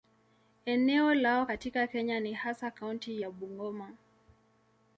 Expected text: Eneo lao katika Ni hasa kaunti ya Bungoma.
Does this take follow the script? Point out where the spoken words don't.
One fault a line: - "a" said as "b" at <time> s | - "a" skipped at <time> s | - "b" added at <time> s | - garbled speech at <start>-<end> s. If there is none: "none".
- "Kenya" added at 1.9 s